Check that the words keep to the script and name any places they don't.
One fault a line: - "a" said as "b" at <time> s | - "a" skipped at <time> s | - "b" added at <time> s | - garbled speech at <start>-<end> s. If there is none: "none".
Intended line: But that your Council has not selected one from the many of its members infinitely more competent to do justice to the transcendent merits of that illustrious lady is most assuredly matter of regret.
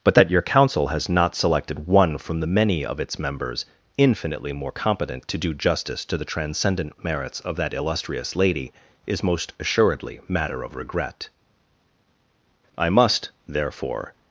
- "I must therefore" added at 12.8 s